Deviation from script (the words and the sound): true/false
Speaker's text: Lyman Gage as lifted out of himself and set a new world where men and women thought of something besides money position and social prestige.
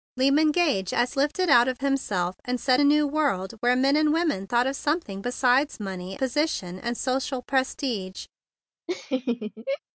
true